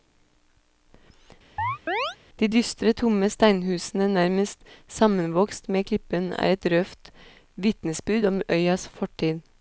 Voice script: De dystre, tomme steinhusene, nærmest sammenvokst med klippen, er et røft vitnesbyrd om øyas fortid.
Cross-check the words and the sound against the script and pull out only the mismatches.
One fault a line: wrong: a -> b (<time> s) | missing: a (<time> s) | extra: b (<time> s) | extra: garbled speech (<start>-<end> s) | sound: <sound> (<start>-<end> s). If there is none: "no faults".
sound: chirp (1.6-2.2 s)